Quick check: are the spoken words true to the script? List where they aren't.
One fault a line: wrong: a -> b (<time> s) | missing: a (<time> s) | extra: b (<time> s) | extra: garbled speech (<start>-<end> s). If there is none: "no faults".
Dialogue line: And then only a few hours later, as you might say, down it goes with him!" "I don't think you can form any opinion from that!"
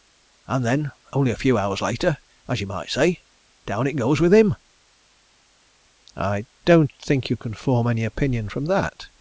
no faults